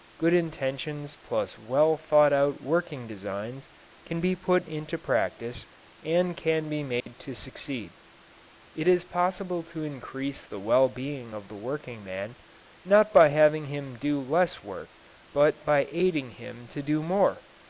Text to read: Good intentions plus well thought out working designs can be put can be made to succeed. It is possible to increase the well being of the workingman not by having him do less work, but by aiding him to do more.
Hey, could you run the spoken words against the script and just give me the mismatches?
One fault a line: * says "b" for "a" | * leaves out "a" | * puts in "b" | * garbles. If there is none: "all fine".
* puts in "into practice and"